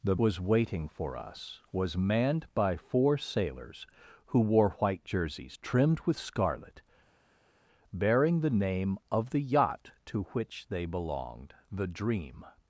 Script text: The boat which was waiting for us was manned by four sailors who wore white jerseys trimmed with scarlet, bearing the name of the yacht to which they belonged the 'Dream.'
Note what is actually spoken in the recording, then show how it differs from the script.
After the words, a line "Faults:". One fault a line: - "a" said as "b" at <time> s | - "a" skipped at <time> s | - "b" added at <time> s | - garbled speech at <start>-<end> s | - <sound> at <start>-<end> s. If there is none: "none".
The was waiting for us was manned by four sailors who wore white jerseys trimmed with scarlet, bearing the name of the yacht to which they belonged the 'Dream.'
Faults:
- "boat which" skipped at 0.1 s